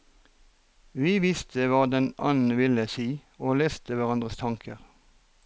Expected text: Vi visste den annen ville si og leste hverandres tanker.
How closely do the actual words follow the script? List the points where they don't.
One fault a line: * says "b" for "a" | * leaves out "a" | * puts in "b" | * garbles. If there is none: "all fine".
* puts in "hva"